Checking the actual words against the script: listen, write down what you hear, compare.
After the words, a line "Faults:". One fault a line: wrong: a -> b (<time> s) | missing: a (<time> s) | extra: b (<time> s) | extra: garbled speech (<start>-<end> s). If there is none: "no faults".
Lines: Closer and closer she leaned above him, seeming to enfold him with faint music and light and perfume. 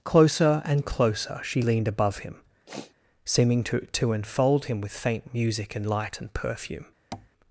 Closer and closer she leaned above him, seeming to to enfold him with faint music and light and perfume.
Faults:
extra: to (3.9 s)